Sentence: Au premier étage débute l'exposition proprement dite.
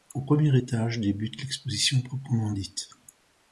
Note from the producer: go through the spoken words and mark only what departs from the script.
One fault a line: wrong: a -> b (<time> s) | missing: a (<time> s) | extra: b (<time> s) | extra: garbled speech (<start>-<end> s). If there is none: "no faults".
no faults